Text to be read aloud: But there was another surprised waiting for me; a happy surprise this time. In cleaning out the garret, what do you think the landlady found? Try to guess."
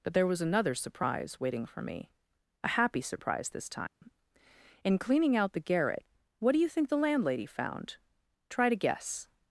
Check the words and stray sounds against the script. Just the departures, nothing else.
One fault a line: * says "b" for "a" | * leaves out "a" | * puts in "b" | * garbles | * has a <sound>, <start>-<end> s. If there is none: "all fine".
* says "surprise" for "surprised"
* has a dropout, 3.9-4.0 s